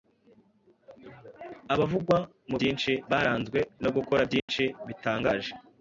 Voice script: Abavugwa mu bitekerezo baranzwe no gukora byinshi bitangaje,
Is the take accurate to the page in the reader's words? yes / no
no